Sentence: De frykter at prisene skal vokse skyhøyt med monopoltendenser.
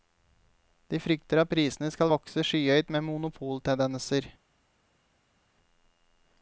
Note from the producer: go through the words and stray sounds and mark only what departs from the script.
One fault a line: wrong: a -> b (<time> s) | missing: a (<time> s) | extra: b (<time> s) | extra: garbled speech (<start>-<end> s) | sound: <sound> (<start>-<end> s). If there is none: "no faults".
no faults